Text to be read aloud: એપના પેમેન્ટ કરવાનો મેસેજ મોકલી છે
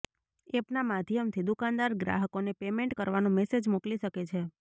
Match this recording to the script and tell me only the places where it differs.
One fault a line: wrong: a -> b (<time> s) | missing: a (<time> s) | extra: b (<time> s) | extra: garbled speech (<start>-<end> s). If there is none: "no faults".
extra: માધ્યમથી દુકાનદાર ગ્રાહકોને (0.8 s)
extra: શકે (4.0 s)